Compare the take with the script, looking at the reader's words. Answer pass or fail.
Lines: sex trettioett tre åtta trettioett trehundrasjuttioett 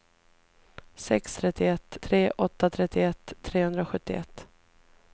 pass